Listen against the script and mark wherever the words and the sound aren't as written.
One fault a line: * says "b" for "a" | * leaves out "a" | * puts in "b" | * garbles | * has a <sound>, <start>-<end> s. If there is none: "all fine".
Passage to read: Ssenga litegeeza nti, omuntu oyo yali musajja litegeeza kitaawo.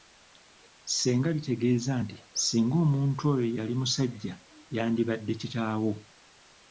* puts in "singa"
* says "yandibadde" for "litegeeza"